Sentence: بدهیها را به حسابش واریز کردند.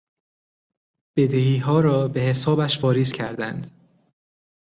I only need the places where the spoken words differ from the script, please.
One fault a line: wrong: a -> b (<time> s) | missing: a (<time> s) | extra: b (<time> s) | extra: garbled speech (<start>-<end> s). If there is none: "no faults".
no faults